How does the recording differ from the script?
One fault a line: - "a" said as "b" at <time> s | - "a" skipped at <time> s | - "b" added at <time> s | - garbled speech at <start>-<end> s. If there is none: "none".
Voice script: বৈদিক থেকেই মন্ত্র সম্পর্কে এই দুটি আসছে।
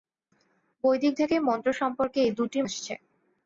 none